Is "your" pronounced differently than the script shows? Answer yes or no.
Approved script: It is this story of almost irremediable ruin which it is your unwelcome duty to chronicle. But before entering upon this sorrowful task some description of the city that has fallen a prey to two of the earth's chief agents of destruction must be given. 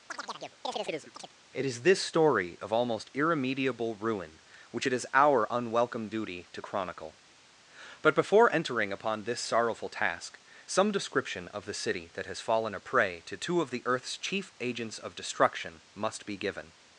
yes